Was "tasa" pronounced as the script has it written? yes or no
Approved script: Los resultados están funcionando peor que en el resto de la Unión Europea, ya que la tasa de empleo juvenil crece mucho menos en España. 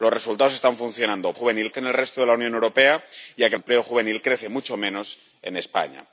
no